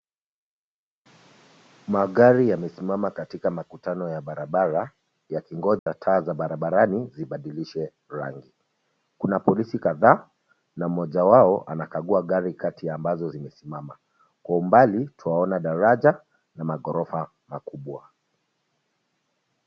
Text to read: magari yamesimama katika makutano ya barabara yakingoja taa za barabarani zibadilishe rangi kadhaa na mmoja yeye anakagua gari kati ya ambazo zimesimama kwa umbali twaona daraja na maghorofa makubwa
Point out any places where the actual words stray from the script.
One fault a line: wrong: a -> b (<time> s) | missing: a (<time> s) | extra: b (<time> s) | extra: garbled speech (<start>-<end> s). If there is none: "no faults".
extra: kuna polisi (9.2 s)
wrong: yeye -> wao (11.2 s)